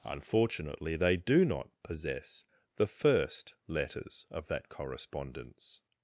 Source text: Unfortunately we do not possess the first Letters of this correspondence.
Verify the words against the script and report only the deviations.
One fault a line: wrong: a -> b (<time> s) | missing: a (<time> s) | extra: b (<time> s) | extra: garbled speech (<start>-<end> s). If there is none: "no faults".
wrong: we -> they (0.9 s)
wrong: this -> that (4.5 s)